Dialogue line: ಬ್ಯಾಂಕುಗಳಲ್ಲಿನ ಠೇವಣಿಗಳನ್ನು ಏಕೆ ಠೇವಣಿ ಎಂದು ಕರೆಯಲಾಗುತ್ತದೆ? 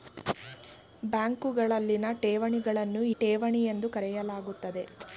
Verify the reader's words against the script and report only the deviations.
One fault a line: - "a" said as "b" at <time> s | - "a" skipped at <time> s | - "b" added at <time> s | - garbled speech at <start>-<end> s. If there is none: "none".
- "ಏಕೆ" skipped at 3.0 s